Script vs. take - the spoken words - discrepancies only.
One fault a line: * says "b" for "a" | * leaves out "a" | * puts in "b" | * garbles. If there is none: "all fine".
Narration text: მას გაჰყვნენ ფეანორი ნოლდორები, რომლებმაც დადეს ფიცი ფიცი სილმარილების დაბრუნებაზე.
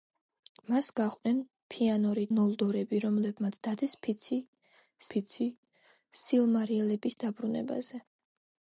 all fine